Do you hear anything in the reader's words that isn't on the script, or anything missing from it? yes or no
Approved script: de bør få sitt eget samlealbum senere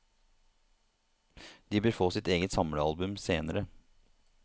no